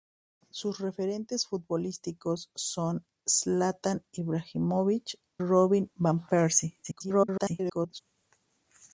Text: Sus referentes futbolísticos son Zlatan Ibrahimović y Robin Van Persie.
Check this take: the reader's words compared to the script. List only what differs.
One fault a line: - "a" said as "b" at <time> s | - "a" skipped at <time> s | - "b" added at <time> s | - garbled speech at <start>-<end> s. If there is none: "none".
- "y" skipped at 5.2 s
- garbled speech at 6.8-8.0 s